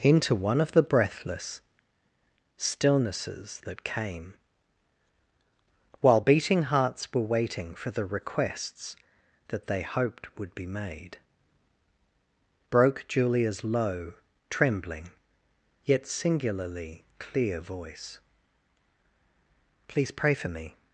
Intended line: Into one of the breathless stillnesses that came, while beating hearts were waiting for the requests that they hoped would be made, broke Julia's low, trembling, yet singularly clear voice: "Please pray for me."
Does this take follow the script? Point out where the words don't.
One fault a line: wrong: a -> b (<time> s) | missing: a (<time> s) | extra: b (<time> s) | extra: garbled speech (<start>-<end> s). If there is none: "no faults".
no faults